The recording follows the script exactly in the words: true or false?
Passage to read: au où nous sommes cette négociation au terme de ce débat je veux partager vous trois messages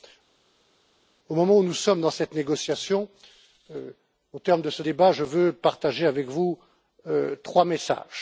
false